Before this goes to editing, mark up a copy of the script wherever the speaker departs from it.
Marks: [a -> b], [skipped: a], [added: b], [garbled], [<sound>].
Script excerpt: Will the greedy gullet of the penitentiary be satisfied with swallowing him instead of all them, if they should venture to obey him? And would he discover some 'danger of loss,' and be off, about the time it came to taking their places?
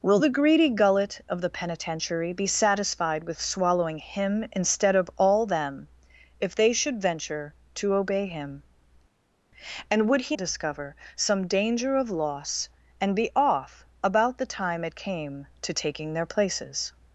Will the greedy gullet of the penitentiary be satisfied with swallowing him instead of all them, if they should venture to obey him? And would he discover some 'danger of loss,' and be off, about the time it came to taking their places?